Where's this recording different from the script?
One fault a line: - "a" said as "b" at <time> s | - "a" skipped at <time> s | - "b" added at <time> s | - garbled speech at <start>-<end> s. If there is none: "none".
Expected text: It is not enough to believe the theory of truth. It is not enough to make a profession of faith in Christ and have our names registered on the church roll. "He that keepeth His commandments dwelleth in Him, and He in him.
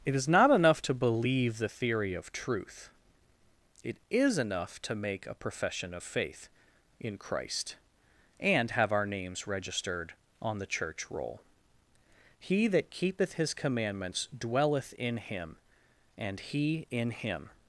- "not" skipped at 4.4 s